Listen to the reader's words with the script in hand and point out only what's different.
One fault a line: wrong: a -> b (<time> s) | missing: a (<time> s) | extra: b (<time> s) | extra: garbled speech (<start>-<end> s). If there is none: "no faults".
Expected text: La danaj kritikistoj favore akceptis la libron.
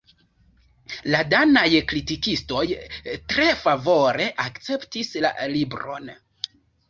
extra: tre (3.4 s)